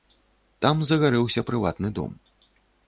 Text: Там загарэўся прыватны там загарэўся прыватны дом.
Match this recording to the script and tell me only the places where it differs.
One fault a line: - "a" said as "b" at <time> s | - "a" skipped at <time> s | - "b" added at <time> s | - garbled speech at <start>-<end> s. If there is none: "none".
- "там загарэўся прыватны" skipped at 1.9 s